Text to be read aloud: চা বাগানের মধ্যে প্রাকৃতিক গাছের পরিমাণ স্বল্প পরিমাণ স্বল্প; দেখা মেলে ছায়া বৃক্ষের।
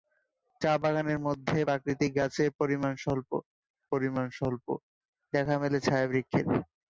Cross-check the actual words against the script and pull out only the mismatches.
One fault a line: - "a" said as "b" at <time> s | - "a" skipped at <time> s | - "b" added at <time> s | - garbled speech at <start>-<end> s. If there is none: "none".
none